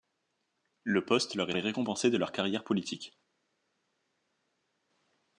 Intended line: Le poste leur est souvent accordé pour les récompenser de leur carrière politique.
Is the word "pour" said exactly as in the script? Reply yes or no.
no